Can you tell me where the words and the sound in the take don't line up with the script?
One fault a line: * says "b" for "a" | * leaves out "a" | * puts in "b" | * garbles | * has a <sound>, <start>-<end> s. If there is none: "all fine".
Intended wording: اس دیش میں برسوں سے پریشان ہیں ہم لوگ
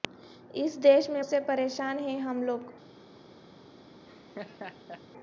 * leaves out "برسوں"
* has a laugh, 4.1-5.0 s